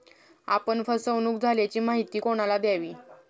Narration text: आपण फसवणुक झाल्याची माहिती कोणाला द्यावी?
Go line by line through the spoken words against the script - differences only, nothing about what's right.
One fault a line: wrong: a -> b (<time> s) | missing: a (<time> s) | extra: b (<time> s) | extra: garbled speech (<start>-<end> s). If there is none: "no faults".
no faults